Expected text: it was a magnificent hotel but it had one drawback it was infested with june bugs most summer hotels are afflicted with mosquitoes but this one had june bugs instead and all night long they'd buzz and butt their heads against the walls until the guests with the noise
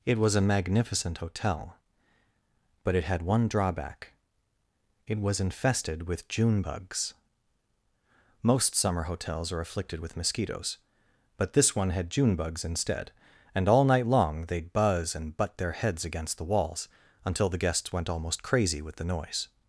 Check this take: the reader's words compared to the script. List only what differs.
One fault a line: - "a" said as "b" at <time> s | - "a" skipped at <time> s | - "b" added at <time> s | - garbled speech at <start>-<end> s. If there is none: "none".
- "went almost crazy" added at 17.9 s